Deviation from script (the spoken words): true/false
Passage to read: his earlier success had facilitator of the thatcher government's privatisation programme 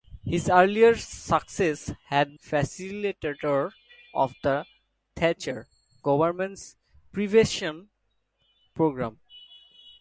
false